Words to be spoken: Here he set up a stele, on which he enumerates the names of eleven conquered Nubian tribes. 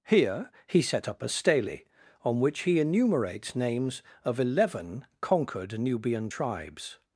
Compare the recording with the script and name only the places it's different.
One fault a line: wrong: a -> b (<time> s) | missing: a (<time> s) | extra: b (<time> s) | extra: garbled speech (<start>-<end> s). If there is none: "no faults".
missing: the (3.5 s)